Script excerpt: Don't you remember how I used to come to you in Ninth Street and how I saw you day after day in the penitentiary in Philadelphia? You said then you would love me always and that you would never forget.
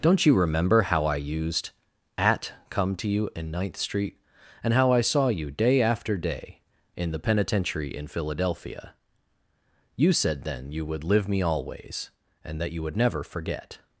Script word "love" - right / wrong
wrong